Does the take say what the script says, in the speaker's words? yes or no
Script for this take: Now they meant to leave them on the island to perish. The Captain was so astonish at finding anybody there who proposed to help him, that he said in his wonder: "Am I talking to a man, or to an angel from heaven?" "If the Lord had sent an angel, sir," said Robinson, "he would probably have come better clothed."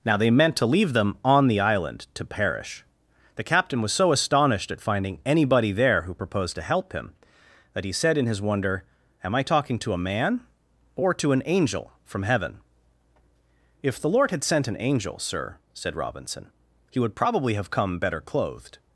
no